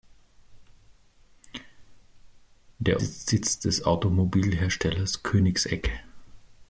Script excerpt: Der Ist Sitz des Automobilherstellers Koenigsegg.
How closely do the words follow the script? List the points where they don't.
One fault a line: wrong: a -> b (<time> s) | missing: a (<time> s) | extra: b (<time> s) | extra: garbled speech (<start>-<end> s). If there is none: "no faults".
no faults